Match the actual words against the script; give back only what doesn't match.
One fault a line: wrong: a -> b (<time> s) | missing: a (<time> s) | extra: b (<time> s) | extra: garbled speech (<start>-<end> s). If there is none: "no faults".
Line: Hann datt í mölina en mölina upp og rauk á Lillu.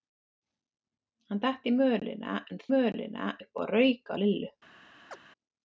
no faults